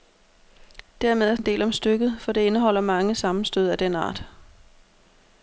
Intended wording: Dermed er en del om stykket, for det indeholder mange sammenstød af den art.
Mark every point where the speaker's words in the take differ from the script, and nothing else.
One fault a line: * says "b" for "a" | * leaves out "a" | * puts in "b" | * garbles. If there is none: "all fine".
all fine